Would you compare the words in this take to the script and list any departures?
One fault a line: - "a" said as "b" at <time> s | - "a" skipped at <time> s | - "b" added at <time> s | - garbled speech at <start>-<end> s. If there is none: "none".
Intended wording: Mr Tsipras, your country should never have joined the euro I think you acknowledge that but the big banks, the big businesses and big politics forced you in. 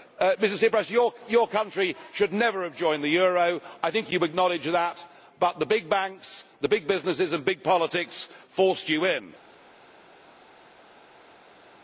none